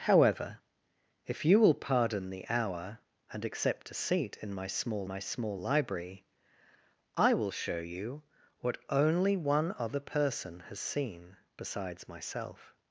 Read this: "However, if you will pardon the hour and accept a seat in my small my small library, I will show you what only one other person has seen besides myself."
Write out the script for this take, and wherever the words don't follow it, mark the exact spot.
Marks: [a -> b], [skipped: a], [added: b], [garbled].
"However, if you will pardon the hour and accept a seat in my small my small library, I will show you what only one other person has seen besides myself."